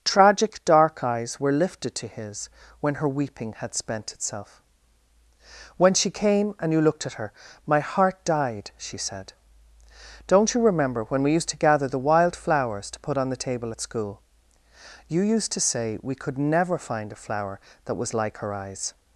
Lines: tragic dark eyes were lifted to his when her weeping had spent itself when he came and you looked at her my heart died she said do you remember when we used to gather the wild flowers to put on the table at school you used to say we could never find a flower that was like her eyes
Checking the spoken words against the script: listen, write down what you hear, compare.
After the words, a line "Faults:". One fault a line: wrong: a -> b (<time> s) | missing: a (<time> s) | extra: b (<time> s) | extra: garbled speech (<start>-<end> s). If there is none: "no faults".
tragic dark eyes were lifted to his when her weeping had spent itself when she came and you looked at her my heart died she said don't you remember when we used to gather the wild flowers to put on the table at school you used to say we could never find a flower that was like her eyes
Faults:
wrong: he -> she (5.9 s)
wrong: do -> don't (10.2 s)